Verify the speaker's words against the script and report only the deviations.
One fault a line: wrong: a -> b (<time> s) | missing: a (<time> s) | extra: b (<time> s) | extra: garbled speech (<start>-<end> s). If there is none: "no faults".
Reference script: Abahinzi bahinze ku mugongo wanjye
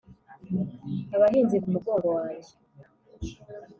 missing: bahinze (1.6 s)